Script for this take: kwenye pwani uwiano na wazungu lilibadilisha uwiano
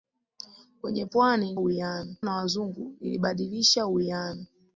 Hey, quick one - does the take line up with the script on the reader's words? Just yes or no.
yes